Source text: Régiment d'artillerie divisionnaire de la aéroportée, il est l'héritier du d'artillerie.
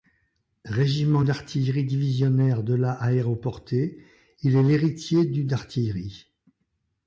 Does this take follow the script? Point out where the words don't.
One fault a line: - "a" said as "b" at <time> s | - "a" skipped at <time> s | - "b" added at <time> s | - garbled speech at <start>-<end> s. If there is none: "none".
none